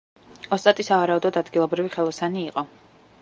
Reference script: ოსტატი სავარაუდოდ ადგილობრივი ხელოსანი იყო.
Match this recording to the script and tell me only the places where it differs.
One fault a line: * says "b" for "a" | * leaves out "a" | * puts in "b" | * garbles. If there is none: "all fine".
all fine